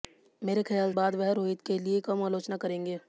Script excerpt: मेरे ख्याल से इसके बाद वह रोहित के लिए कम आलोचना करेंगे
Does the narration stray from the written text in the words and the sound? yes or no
yes